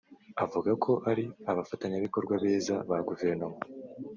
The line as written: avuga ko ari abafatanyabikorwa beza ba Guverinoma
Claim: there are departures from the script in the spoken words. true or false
false